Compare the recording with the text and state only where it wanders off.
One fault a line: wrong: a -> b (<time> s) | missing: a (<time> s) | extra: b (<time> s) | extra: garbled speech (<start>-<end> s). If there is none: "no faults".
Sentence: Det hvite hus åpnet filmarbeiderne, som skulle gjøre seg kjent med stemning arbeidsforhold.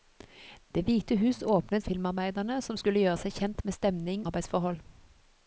no faults